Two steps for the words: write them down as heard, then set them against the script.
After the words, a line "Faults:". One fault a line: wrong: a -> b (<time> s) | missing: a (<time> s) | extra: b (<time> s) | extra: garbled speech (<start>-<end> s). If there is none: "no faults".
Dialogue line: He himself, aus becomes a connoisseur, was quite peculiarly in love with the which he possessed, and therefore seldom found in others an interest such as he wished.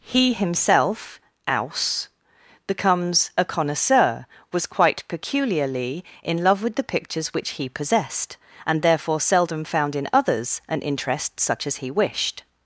He himself, aus becomes a connoisseur, was quite peculiarly in love with the pictures which he possessed, and therefore seldom found in others an interest such as he wished.
Faults:
extra: pictures (6.8 s)